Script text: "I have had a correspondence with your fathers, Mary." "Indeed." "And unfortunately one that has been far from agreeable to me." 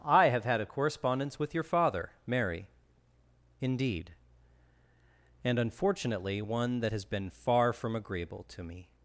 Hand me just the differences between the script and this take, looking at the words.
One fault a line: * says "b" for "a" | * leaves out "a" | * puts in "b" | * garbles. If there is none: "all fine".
* says "father" for "fathers"